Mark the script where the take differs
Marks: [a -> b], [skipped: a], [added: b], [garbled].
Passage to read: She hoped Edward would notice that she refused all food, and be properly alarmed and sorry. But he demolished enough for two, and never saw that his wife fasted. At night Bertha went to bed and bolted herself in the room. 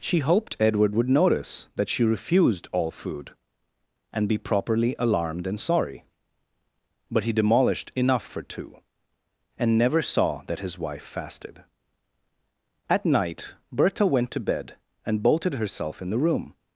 She hoped Edward would notice that she refused all food, and be properly alarmed and sorry. But he demolished enough for two, and never saw that his wife fasted. At night Bertha went to bed and bolted herself in the room.